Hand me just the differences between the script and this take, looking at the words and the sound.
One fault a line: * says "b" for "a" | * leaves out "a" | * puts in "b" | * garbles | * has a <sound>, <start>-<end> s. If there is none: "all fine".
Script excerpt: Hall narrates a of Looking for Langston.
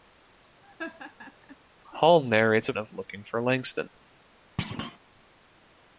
* has a laugh, 0.6-1.6 s
* has a thud, 4.6-5.0 s